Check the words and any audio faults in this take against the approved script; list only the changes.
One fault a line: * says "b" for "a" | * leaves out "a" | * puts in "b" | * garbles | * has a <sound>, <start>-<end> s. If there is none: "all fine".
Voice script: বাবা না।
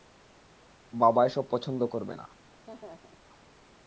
* puts in "এসব পছন্দ করবে"
* has a laugh, 2.7-3.3 s